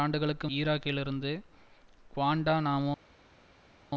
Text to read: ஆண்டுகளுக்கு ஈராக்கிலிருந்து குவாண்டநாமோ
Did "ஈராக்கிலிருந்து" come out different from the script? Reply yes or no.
no